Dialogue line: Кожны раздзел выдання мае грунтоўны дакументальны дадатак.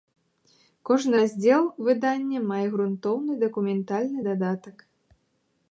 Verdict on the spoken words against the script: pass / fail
pass